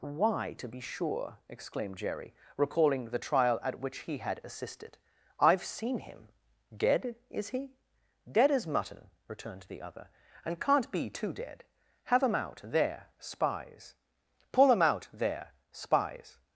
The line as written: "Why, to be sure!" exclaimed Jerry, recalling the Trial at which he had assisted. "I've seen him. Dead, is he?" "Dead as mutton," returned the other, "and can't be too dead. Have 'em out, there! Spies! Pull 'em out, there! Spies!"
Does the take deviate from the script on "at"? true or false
false